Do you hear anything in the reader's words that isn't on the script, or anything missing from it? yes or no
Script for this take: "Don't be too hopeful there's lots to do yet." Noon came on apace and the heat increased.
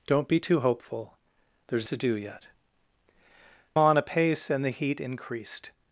yes